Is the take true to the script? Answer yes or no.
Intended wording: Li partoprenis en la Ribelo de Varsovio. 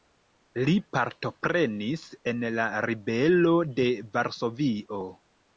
yes